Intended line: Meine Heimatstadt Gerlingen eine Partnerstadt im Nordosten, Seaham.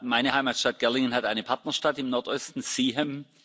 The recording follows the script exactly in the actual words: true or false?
false